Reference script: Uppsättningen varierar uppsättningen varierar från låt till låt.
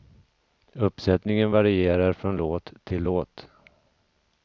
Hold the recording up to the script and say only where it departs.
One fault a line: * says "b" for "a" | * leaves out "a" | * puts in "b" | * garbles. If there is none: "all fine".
* leaves out "uppsättningen varierar"